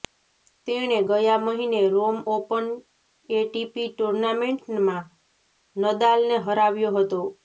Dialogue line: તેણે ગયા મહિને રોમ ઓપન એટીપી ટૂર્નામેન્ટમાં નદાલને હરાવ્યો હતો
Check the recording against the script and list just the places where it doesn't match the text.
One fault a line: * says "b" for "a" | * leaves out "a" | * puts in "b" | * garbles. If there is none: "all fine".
all fine